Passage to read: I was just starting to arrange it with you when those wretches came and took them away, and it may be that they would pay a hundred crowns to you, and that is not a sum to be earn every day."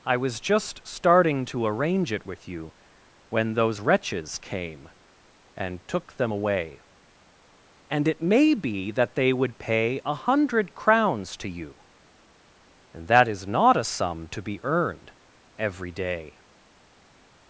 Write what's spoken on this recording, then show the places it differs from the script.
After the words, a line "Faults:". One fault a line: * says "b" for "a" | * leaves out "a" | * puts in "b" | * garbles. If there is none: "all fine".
I was just starting to arrange it with you when those wretches came and took them away, and it may be that they would pay a hundred crowns to you, and that is not a sum to be earned every day."
Faults:
* says "earned" for "earn"